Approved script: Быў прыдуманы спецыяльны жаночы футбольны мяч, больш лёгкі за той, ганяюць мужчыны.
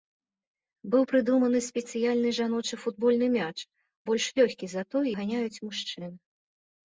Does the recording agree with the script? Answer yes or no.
yes